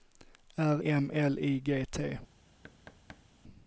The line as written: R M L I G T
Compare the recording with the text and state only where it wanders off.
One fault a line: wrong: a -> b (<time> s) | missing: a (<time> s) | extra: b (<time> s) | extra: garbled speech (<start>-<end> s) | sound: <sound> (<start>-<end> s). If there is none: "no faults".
sound: thud (2.6-3.2 s)